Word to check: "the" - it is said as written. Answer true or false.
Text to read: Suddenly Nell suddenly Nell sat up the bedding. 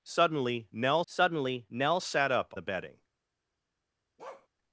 true